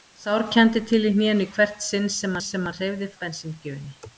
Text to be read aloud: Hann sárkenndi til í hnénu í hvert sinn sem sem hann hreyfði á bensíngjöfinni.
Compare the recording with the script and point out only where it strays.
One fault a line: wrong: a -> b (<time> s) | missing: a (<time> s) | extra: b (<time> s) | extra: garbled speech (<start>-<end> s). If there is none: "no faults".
no faults